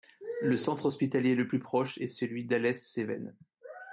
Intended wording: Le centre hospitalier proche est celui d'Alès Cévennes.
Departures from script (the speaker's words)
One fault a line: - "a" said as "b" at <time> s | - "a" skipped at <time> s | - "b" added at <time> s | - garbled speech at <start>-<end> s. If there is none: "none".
- "le plus" added at 1.4 s